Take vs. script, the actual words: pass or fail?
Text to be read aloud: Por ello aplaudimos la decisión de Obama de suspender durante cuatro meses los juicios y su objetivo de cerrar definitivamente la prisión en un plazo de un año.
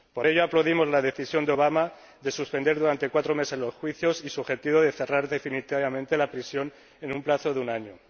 pass